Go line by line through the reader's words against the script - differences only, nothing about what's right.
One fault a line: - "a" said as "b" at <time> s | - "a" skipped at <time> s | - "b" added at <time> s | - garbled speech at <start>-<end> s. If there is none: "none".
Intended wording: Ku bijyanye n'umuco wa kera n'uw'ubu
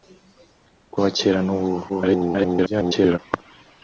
- "bijyanye n'umuco" skipped at 1.0 s
- garbled speech at 1.9-3.2 s